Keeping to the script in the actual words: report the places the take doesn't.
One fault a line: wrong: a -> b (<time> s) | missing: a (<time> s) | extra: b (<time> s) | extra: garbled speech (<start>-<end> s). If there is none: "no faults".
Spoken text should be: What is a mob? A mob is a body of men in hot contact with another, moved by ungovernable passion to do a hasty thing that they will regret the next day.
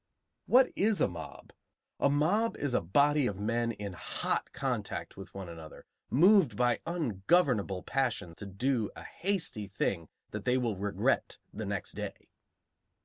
extra: one (5.3 s)